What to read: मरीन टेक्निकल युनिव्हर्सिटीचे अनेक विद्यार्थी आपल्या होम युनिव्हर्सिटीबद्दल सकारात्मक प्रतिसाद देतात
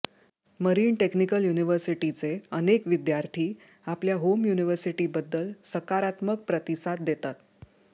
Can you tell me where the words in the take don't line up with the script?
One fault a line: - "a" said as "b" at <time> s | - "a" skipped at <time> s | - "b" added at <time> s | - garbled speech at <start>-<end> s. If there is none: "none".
none